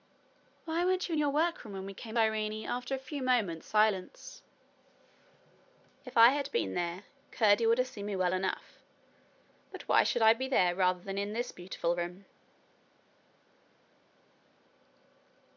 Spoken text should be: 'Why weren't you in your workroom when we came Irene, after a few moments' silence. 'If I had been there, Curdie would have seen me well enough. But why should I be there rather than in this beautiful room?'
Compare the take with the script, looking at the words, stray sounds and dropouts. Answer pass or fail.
pass